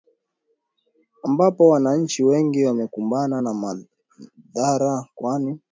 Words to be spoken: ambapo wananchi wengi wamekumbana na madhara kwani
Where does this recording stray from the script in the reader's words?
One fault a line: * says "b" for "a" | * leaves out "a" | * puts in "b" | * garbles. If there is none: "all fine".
all fine